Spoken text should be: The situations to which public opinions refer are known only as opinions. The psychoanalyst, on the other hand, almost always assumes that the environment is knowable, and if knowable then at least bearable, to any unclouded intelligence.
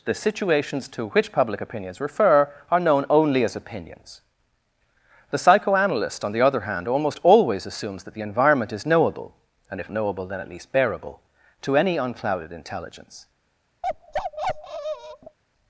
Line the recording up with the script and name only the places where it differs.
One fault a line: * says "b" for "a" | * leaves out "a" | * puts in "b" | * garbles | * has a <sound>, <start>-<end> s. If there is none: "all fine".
* has a bark, 13.8-15.4 s